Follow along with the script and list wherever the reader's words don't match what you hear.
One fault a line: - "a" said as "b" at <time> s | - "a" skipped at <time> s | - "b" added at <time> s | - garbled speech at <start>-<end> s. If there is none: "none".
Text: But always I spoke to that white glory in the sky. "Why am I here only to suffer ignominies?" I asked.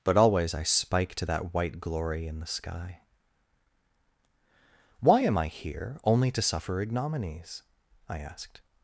- "spoke" said as "spike" at 0.6 s